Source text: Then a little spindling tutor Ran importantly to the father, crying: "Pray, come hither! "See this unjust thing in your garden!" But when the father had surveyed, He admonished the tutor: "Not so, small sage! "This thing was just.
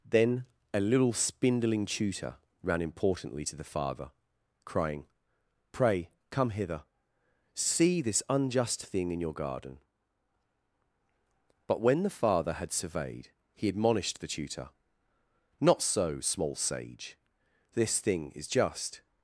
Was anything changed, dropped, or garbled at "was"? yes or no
yes